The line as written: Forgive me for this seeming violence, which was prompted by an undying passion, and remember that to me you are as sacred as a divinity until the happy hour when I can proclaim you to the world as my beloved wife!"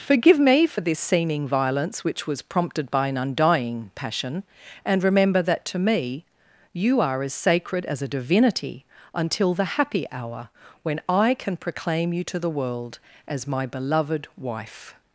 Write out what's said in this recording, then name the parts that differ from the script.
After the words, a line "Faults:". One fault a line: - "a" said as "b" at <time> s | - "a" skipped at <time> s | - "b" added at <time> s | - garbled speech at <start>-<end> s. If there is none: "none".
Forgive me for this seeming violence, which was prompted by an undying passion, and remember that to me you are as sacred as a divinity until the happy hour when I can proclaim you to the world as my beloved wife!"
Faults:
none